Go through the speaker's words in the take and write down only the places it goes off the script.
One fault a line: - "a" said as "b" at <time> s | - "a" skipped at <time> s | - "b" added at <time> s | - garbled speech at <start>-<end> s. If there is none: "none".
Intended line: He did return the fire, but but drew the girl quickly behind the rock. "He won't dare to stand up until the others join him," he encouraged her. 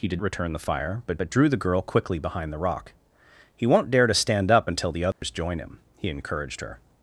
none